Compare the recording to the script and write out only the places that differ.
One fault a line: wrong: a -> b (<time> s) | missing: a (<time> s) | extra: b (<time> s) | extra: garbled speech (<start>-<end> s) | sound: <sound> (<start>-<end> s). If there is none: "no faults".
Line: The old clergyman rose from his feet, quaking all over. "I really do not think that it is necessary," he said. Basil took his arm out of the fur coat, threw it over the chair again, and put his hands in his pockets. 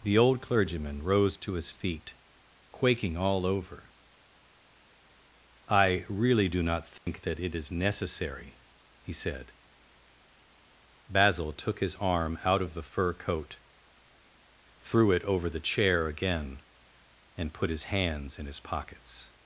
wrong: from -> to (1.4 s)
sound: dropout (7.0-7.1 s)